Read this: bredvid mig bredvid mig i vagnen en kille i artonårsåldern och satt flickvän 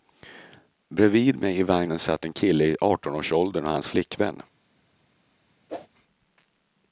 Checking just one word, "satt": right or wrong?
wrong